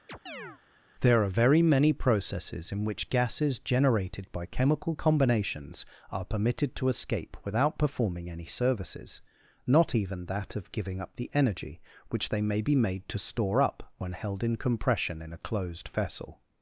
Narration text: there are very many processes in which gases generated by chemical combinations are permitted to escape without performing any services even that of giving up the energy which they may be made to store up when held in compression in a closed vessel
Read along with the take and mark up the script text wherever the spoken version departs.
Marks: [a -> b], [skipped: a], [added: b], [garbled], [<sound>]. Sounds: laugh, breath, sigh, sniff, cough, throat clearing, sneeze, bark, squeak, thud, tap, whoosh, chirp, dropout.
[chirp] there are very many processes in which gases generated by chemical combinations are permitted to escape without performing any services [added: not] even that of giving up the energy which they may be made to store up when held in compression in a closed vessel